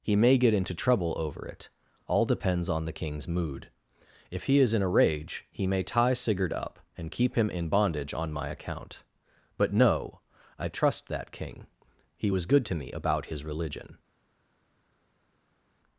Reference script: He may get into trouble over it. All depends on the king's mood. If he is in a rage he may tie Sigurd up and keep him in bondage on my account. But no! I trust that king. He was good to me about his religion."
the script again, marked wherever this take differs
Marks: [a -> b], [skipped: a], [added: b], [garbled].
He may get into trouble over it. All depends on the king's mood. If he is in a rage he may tie Sigurd up and keep him in bondage on my account. But no! I trust that king. He was good to me about his religion."